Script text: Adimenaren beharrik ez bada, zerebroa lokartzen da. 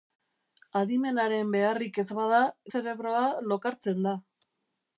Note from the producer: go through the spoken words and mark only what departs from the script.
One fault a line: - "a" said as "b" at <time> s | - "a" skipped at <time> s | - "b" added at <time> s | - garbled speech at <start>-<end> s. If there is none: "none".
none